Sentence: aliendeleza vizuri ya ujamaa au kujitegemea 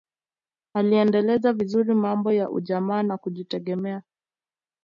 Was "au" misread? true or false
true